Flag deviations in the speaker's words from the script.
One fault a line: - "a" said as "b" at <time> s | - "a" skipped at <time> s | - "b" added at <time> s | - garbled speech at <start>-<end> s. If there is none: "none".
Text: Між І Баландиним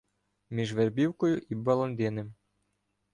- "Вербівкою" added at 0.7 s